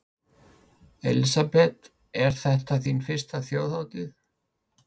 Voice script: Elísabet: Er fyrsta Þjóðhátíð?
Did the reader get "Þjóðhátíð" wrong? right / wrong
right